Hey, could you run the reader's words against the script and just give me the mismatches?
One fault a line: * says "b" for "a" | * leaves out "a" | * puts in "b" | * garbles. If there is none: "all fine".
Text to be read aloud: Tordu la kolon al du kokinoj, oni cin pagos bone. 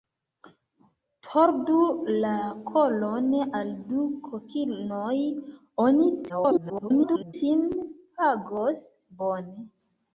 * garbles